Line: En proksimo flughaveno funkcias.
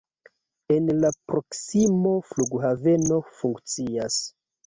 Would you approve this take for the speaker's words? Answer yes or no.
no